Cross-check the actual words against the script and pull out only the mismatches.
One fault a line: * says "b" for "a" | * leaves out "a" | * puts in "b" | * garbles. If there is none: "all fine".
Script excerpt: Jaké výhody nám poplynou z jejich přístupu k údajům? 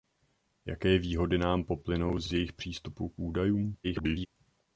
* puts in "z"
* garbles